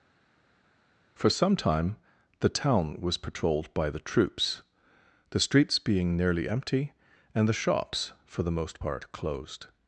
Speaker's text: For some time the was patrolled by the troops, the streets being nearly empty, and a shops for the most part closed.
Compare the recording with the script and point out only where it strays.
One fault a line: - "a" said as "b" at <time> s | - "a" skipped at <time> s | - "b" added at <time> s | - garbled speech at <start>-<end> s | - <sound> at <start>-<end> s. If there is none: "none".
- "town" added at 2.5 s
- "a" said as "the" at 7.5 s